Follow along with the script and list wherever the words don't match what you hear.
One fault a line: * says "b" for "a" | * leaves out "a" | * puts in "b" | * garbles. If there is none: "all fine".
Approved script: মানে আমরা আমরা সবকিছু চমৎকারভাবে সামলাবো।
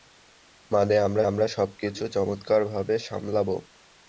all fine